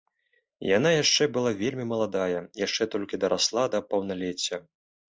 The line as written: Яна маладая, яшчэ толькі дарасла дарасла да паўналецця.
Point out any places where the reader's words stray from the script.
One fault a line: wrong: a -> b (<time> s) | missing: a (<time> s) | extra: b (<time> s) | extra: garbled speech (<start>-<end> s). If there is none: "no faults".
extra: яшчэ была вельмі (1.0 s)
missing: дарасла (3.7 s)